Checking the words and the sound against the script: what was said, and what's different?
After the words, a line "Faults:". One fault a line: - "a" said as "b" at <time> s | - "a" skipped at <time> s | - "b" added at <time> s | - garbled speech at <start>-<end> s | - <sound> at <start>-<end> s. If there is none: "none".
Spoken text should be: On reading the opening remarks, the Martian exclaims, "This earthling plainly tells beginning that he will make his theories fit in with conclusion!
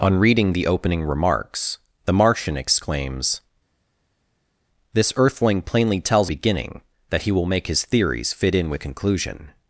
On reading the opening remarks, the Martian exclaims, "This earthling plainly tells beginning that he will make his theories fit in with conclusion!
Faults:
none